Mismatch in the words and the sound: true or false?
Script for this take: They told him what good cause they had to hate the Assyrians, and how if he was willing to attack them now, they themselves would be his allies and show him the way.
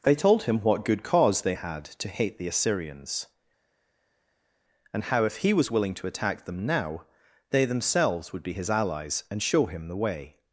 false